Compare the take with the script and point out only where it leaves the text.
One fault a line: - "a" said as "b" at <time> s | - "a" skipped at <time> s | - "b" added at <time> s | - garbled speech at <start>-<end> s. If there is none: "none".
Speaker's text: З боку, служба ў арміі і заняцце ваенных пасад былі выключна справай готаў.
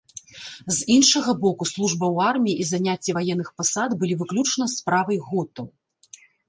- "іншага" added at 0.9 s